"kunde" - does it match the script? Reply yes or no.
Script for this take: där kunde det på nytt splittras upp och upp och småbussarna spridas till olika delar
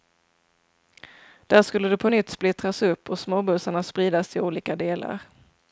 no